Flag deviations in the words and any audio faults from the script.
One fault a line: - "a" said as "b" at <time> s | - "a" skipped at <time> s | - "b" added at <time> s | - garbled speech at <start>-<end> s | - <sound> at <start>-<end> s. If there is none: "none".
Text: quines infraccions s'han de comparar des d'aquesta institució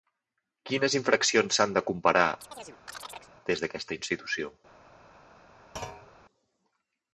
- chirp at 2.4-3.3 s
- thud at 5.8-6.1 s